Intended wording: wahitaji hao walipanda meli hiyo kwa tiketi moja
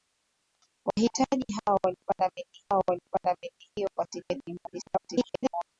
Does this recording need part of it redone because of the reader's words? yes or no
yes